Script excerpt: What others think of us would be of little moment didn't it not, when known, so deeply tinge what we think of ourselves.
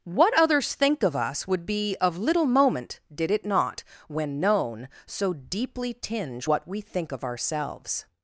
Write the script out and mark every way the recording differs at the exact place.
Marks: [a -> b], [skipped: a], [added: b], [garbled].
What others think of us would be of little moment [didn't -> did] it not, when known, so deeply tinge what we think of ourselves.